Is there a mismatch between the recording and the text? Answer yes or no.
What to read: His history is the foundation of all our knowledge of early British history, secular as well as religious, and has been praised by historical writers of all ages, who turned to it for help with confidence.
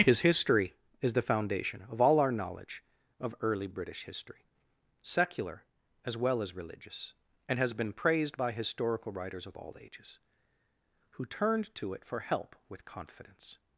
no